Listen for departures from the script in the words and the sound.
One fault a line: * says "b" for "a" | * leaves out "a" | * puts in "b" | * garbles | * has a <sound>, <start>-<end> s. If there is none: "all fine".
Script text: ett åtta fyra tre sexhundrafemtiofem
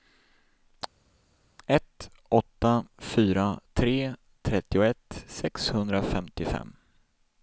* puts in "trettioett"